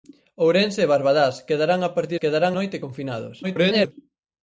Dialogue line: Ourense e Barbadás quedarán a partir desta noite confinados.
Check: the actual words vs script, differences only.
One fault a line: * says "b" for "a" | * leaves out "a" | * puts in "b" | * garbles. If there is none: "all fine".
* says "quedarán" for "desta"
* garbles